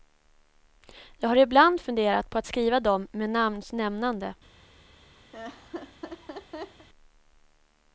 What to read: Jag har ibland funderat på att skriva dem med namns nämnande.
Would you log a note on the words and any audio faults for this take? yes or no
yes